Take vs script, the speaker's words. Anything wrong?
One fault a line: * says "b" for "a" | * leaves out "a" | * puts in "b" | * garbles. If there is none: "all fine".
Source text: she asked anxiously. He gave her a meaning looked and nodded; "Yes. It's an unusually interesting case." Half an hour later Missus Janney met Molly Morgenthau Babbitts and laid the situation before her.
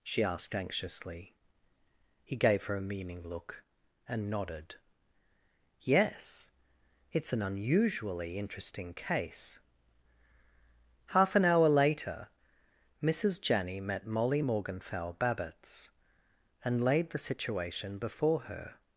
* says "look" for "looked"